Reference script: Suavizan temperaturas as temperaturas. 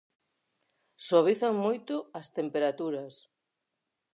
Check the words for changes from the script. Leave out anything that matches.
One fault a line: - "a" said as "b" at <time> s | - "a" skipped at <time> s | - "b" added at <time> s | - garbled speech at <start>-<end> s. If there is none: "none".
- "temperaturas" said as "moito" at 1.6 s